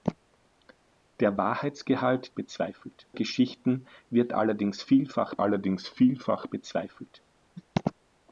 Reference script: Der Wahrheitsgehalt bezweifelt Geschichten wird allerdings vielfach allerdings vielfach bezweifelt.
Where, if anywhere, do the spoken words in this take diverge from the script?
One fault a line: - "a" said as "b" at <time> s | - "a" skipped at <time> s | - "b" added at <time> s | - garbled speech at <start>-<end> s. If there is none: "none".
none